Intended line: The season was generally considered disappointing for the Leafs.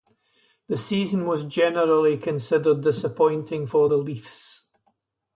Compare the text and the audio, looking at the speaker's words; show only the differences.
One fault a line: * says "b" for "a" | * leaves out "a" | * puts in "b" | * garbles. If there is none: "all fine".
all fine